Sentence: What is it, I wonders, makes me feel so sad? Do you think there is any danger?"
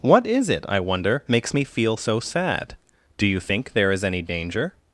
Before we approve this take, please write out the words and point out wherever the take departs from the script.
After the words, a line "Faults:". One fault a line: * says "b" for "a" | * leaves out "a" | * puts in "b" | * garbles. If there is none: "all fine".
What is it, I wonder, makes me feel so sad? Do you think there is any danger?"
Faults:
* says "wonder" for "wonders"